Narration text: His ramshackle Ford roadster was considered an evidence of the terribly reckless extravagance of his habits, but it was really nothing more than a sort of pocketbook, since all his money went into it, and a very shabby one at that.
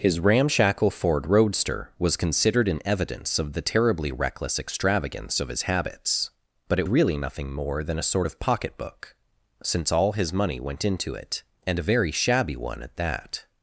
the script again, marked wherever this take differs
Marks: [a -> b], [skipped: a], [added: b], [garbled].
His ramshackle Ford roadster was considered an evidence of the terribly reckless extravagance of his habits, but it [skipped: was] really nothing more than a sort of pocketbook, since all his money went into it, and a very shabby one at that.